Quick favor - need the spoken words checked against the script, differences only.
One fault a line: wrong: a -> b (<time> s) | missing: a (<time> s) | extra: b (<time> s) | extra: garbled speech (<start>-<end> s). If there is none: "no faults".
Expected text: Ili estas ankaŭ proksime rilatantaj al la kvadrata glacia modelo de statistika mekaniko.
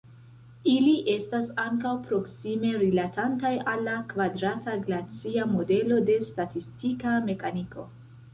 no faults